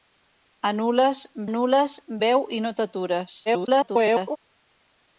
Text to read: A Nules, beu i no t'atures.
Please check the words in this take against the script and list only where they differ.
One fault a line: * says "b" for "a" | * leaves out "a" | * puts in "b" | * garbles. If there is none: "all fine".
* puts in "Nules"
* garbles